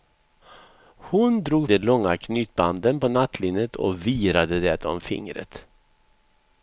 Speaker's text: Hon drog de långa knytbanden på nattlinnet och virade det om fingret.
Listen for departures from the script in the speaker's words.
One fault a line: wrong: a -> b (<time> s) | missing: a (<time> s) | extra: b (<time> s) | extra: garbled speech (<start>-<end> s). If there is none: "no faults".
no faults